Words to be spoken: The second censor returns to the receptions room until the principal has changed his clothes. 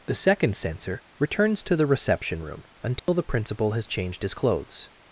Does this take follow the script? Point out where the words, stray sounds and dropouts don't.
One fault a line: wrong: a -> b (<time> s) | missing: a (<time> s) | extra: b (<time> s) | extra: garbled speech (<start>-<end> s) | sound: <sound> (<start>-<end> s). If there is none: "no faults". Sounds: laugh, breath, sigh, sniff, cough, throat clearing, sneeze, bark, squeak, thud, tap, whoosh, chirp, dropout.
wrong: receptions -> reception (1.9 s)
sound: dropout (3.0-3.1 s)